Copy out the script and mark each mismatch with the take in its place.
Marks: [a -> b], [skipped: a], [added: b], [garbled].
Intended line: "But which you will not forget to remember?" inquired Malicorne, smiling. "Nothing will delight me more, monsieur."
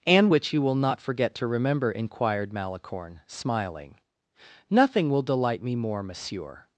["But -> And] which you will not forget to remember?" inquired Malicorne, smiling. "Nothing will delight me more, monsieur."